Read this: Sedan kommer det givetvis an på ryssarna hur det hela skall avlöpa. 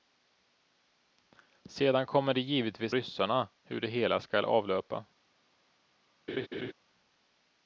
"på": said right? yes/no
no